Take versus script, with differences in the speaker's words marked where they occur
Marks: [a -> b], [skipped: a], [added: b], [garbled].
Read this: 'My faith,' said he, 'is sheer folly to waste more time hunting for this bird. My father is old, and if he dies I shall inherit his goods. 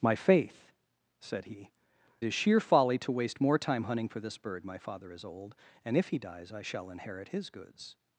'My faith,' said he, 'is sheer folly to waste more time hunting for this bird. My father is old, and if he dies I shall inherit his goods.